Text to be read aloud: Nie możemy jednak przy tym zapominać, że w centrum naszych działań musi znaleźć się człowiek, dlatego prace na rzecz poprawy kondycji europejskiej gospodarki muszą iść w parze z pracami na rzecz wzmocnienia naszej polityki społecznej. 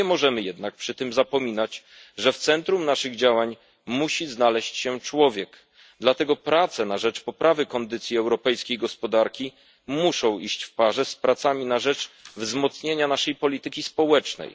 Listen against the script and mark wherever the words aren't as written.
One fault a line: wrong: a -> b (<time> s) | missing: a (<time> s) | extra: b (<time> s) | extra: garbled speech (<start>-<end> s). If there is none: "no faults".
no faults